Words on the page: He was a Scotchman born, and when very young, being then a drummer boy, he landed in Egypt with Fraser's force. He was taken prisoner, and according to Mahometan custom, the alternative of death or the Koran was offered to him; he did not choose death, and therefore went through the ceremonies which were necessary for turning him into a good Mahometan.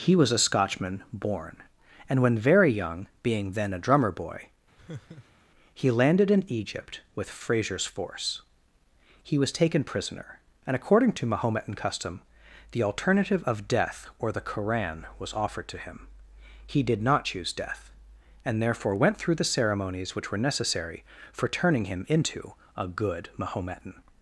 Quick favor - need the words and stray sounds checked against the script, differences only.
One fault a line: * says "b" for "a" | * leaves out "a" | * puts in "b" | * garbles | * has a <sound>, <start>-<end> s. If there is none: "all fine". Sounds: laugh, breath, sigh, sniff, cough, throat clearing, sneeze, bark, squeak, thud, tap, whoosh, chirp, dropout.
* has a laugh, 4.8-5.5 s